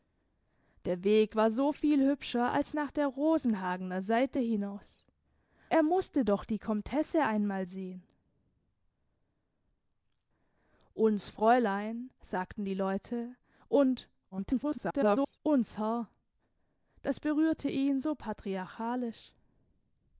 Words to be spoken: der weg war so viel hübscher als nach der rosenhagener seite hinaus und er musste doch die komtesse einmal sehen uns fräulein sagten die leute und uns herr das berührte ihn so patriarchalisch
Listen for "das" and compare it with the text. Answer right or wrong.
right